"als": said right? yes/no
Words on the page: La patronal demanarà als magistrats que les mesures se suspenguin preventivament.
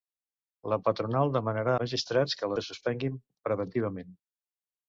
no